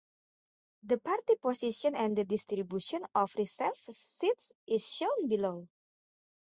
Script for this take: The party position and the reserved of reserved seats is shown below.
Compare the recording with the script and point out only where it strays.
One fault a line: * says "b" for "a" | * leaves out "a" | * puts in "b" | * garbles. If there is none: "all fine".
* says "distribution" for "reserved"